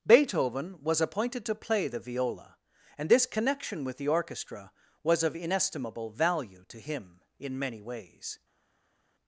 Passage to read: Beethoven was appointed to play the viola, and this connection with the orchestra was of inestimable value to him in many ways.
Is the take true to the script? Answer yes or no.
yes